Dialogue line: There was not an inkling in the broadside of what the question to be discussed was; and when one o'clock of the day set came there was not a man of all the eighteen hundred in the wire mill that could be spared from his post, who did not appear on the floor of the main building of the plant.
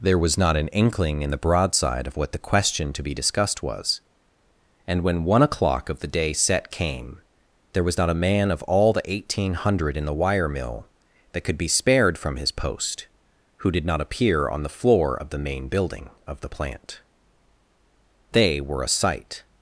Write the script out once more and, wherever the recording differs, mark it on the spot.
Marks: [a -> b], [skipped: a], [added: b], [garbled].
There was not an inkling in the broadside of what the question to be discussed was; and when one o'clock of the day set came there was not a man of all the eighteen hundred in the wire mill that could be spared from his post, who did not appear on the floor of the main building of the plant. [added: They were a sight]